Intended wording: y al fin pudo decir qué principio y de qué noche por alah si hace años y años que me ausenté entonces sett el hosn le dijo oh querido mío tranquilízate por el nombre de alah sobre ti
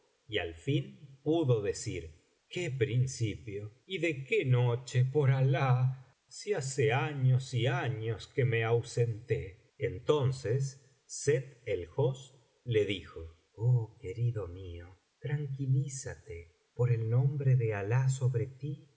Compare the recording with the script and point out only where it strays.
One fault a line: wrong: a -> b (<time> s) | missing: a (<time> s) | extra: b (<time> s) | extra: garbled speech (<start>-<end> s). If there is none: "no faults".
no faults